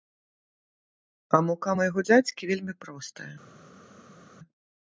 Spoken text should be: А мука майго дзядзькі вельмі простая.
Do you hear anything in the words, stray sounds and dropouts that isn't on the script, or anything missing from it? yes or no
no